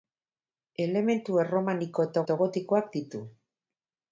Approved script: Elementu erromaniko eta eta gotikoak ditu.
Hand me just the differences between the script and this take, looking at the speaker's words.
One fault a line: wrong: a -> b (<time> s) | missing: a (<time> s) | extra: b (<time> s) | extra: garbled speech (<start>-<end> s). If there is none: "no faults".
no faults